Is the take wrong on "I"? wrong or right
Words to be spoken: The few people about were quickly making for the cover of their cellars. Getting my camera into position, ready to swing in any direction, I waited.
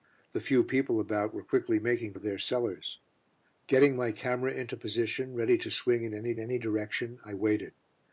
right